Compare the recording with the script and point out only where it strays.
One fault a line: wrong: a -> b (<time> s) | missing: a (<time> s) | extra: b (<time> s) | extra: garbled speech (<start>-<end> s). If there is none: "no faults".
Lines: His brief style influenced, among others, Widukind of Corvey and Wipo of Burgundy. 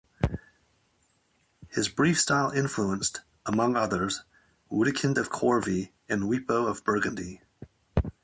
no faults